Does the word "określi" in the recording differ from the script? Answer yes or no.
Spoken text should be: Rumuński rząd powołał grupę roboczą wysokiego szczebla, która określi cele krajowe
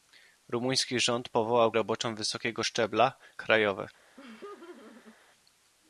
yes